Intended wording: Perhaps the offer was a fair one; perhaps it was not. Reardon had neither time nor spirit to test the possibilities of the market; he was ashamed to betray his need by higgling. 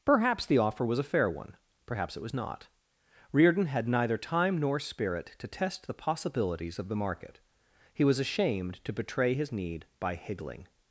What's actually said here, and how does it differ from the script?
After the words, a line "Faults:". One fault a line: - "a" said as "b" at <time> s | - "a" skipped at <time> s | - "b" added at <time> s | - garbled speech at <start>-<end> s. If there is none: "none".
Perhaps the offer was a fair one; perhaps it was not. Reardon had neither time nor spirit to test the possibilities of the market; he was ashamed to betray his need by higgling.
Faults:
none